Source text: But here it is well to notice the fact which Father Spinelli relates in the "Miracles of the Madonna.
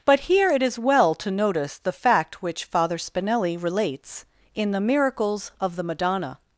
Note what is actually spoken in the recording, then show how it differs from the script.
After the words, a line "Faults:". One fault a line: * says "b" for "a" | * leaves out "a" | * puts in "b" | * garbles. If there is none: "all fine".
But here it is well to notice the fact which Father Spinelli relates in the "Miracles of the Madonna.
Faults:
all fine